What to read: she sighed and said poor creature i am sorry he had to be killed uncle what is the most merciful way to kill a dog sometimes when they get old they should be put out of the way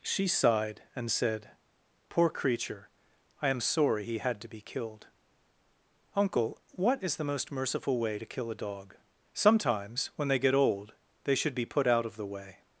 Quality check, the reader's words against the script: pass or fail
pass